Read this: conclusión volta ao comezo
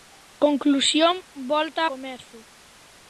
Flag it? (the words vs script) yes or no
yes